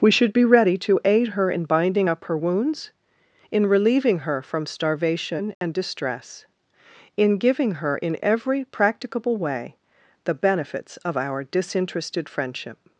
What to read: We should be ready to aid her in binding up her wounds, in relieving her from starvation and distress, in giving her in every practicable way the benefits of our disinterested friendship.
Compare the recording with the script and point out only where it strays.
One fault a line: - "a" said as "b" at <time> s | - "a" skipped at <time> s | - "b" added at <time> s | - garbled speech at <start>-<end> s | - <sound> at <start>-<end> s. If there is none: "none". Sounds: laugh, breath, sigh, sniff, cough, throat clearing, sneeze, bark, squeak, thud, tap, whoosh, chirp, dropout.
- dropout at 5.5-5.6 s